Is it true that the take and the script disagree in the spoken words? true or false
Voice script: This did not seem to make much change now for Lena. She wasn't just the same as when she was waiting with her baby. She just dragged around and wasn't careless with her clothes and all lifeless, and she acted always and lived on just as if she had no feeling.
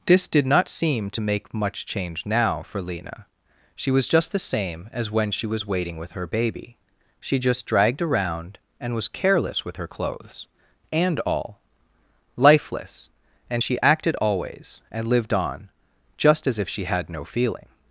true